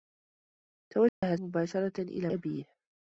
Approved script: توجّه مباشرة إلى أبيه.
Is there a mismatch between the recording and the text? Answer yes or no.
no